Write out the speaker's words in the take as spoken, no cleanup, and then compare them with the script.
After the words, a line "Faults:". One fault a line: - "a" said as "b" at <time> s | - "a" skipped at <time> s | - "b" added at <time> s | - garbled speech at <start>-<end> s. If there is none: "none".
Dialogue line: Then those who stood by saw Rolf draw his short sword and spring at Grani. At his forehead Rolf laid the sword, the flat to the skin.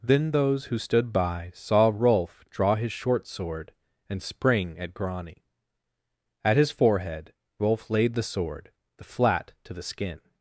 Then those who stood by saw Rolf draw his short sword and spring at Grani. At his forehead Rolf laid the sword, the flat to the skin.
Faults:
none